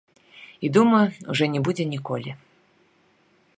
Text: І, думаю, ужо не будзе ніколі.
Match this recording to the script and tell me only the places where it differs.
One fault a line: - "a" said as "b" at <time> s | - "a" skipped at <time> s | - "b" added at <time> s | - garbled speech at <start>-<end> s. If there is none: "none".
none